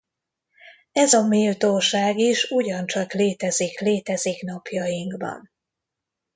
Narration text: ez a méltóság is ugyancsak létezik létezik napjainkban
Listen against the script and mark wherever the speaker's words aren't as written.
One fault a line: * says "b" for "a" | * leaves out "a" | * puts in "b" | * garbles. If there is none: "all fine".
all fine